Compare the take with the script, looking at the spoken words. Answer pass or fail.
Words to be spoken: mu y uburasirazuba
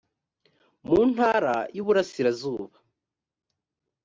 fail